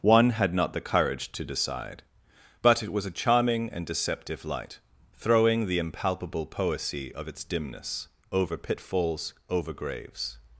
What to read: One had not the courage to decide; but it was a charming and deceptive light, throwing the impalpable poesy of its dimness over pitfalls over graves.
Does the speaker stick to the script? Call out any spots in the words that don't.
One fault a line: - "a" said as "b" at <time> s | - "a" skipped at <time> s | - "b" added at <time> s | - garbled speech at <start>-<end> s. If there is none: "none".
none